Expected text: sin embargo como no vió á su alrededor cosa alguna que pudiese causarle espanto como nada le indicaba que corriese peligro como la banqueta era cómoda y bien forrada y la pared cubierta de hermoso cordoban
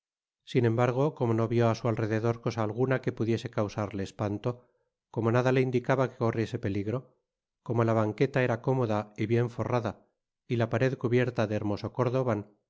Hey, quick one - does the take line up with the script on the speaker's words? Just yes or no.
yes